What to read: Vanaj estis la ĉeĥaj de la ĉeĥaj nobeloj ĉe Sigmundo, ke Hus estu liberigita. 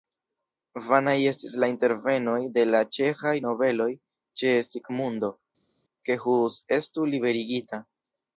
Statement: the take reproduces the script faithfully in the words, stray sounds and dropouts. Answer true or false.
false